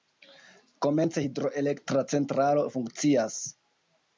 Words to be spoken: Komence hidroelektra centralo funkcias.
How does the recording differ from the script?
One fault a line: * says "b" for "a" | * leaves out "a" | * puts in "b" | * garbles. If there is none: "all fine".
all fine